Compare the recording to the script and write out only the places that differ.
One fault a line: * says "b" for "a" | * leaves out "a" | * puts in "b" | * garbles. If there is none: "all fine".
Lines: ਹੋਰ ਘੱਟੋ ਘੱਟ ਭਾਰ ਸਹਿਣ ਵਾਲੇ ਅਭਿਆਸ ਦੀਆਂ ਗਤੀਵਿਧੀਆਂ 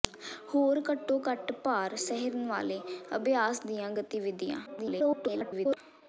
* garbles